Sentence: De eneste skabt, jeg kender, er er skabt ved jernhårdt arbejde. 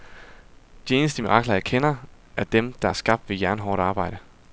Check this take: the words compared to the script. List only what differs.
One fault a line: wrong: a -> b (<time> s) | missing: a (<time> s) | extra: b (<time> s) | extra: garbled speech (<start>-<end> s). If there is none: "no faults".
wrong: skabt -> mirakler (1.2 s)
extra: dem der (2.4 s)